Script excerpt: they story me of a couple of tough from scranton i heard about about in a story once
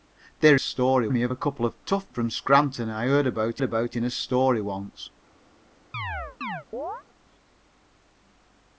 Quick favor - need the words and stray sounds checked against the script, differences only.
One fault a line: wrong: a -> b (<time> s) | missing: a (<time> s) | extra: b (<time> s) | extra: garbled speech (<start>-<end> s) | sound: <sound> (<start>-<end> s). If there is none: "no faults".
sound: chirp (5.9-7.0 s)